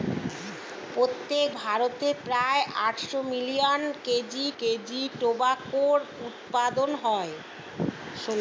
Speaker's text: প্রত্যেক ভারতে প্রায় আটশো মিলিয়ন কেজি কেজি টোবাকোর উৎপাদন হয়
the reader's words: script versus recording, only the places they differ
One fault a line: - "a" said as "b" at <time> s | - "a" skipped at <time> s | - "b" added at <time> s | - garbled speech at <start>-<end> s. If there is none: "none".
none